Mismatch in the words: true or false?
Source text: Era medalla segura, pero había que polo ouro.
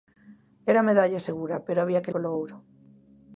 false